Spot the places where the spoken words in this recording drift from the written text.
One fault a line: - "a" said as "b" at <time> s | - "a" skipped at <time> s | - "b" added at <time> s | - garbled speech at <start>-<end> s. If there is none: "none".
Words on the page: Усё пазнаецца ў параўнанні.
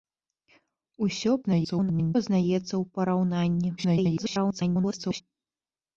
- garbled speech at 1.4-2.1 s
- garbled speech at 3.8-5.2 s